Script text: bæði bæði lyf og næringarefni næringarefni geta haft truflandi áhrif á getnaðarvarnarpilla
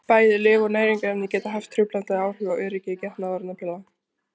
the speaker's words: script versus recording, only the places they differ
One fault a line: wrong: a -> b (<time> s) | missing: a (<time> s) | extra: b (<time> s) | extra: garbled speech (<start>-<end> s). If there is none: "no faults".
missing: bæði (0.4 s)
missing: næringarefni (1.3 s)
extra: öryggi (2.7 s)